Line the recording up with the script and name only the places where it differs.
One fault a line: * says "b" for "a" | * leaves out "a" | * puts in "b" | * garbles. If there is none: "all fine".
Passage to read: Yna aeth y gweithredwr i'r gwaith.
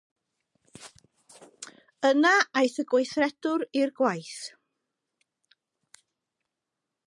all fine